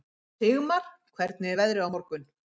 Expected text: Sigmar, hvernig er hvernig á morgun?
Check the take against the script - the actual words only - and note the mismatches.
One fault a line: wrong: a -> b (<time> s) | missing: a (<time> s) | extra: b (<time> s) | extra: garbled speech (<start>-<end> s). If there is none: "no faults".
wrong: hvernig -> veðrið (1.6 s)